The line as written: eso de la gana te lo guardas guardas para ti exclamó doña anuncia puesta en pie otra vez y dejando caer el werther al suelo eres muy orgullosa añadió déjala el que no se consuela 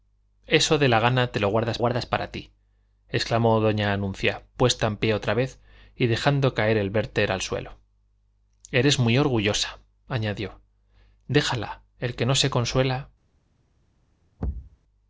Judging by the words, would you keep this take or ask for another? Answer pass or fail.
pass